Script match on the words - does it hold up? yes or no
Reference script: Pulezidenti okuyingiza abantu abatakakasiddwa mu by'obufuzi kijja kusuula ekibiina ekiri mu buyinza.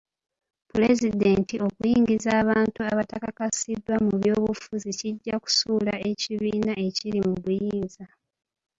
yes